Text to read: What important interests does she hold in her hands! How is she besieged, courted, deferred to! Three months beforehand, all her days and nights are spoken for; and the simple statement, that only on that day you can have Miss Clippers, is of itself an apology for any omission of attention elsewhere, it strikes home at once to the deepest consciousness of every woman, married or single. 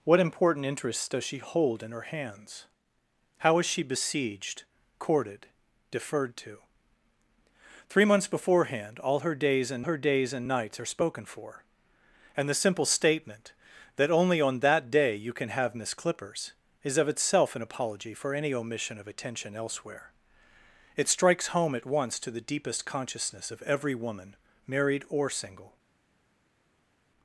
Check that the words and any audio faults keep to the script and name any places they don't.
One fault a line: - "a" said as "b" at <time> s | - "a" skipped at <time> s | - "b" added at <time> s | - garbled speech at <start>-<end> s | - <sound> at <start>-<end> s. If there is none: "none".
- "her days and" added at 9.8 s